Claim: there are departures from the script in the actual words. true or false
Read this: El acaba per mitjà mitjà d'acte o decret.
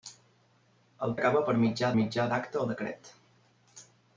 false